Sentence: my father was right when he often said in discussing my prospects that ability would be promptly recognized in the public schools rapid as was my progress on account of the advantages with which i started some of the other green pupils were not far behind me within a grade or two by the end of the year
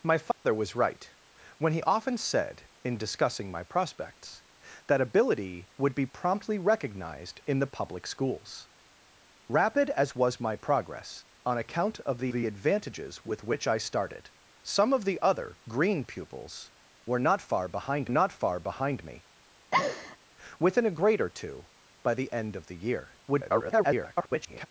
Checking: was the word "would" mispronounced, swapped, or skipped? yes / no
no